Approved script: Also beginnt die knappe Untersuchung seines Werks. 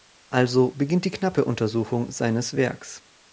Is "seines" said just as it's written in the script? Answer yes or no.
yes